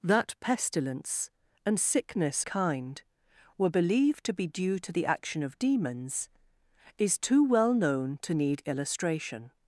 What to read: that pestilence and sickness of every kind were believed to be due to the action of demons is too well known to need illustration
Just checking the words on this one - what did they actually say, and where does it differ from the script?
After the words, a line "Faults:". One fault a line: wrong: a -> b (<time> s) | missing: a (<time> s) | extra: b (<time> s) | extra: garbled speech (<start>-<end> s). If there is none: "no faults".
that pestilence and sickness kind were believed to be due to the action of demons is too well known to need illustration
Faults:
missing: of every (2.4 s)